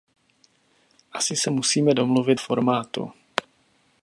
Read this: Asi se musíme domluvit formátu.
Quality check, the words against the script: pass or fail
pass